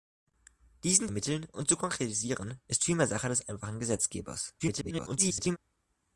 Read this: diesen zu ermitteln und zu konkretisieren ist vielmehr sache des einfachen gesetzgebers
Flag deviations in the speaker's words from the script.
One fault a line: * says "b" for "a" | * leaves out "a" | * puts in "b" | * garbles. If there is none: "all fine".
* leaves out "zu"
* garbles